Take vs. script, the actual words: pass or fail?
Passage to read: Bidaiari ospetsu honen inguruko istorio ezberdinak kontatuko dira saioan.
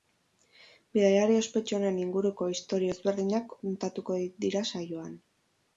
pass